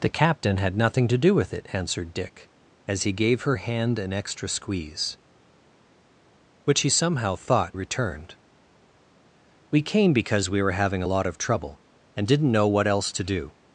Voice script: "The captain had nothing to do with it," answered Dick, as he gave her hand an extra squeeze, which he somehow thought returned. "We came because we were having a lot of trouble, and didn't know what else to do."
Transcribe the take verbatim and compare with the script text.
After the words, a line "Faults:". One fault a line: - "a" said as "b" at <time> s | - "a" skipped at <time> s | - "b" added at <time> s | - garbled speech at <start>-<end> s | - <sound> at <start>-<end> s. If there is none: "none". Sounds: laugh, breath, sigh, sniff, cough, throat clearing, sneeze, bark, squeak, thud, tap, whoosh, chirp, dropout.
"The captain had nothing to do with it," answered Dick, as he gave her hand an extra squeeze, which he somehow thought returned. "We came because we were having a lot of trouble, and didn't know what else to do."
Faults:
none